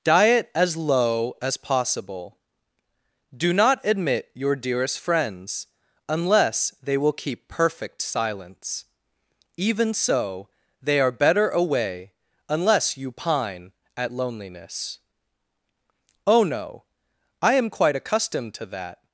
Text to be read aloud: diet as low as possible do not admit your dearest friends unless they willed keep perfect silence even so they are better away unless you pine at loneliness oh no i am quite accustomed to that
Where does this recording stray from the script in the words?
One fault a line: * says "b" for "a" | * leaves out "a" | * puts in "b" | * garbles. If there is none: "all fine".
* says "will" for "willed"